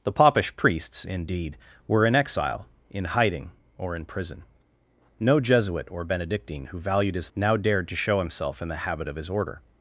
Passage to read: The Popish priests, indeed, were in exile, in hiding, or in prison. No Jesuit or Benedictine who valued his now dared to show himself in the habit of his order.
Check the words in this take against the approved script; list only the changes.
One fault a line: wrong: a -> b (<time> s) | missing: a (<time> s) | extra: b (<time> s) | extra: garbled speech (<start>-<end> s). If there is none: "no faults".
no faults